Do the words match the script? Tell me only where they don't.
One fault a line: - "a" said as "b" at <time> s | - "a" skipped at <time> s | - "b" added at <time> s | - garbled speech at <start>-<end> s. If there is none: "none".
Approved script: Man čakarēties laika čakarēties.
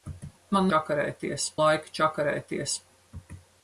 none